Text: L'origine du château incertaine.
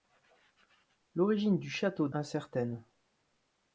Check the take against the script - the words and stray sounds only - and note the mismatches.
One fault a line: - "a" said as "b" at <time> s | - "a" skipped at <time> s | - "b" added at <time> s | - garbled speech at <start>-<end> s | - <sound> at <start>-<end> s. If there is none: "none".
none